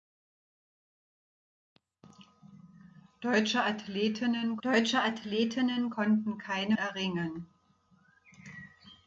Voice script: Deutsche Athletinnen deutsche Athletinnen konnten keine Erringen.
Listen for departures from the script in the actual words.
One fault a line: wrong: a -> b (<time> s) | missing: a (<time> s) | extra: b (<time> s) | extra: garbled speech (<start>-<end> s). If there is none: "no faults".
no faults